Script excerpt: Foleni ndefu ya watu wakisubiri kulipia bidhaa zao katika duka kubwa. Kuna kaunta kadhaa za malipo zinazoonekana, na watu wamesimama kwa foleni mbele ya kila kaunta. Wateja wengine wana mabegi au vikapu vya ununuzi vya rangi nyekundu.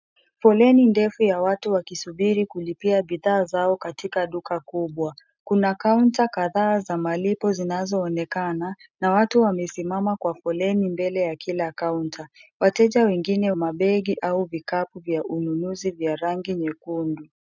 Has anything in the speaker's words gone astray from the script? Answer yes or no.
yes